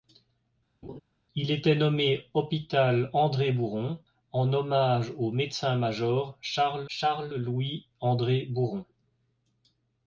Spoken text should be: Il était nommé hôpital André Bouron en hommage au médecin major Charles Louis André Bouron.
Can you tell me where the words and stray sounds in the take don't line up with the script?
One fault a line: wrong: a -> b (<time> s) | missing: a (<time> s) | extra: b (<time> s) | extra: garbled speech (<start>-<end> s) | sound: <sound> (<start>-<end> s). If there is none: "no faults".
sound: laugh (0.8-1.0 s)
extra: Charles (6.9 s)